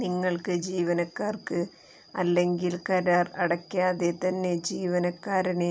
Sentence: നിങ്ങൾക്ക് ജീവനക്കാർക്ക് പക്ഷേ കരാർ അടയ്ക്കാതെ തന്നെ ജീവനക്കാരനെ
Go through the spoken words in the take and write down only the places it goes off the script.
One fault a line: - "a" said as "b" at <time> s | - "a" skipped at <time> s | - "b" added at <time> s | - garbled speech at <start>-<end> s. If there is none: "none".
- "പക്ഷേ" said as "അല്ലെങ്കിൽ" at 2.1 s